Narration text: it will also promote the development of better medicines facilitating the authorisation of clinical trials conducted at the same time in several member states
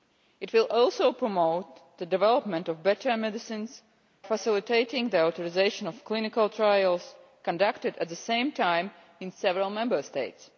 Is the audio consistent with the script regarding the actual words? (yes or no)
yes